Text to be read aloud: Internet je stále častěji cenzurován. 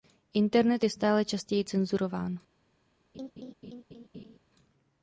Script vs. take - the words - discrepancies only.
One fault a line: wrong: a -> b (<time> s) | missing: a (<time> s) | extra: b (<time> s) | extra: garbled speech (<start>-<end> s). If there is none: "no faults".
no faults